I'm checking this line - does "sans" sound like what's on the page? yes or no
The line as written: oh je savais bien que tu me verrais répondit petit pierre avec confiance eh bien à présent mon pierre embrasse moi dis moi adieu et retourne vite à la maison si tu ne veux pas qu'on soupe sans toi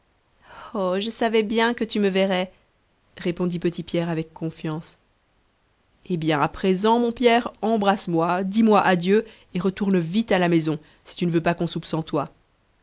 yes